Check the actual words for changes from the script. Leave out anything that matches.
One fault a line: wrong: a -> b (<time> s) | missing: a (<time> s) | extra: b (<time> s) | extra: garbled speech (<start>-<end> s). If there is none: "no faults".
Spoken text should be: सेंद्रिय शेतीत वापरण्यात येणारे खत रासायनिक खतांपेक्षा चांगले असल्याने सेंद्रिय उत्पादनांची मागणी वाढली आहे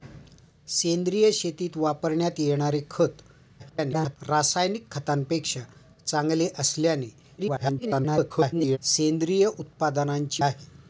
extra: garbled speech (3.6-4.2 s)
extra: garbled speech (7.4-8.8 s)
missing: मागणी वाढली (10.4 s)